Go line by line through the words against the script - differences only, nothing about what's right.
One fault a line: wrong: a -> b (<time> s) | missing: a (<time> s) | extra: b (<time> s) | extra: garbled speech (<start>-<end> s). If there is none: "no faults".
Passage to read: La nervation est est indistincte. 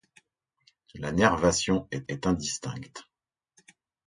no faults